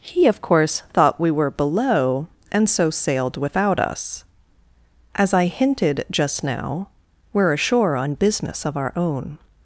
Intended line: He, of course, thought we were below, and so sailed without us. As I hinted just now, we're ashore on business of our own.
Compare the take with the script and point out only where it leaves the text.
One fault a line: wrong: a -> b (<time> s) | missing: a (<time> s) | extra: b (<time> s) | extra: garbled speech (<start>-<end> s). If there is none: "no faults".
no faults